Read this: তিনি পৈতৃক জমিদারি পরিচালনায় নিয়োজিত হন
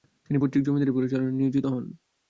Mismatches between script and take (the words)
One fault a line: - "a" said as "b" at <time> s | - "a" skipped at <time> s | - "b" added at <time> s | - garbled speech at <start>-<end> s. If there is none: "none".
none